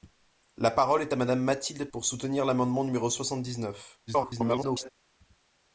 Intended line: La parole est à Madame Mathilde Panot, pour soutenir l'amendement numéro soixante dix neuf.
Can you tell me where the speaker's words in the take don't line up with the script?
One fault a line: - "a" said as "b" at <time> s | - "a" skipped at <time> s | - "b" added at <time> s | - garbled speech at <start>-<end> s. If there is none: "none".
- "Panot" skipped at 1.8 s
- garbled speech at 4.1-4.9 s